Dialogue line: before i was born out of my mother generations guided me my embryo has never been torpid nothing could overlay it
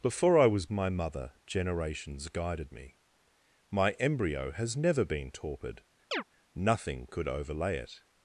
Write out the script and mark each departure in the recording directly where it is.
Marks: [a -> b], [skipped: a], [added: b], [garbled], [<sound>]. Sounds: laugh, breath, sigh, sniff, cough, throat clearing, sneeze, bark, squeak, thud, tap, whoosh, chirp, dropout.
before i was [skipped: born out of] my mother generations guided me my embryo has never been torpid [chirp] nothing could overlay it